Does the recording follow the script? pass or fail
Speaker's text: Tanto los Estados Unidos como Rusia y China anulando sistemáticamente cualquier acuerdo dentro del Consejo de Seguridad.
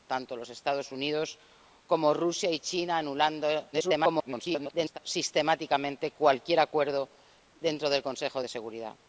fail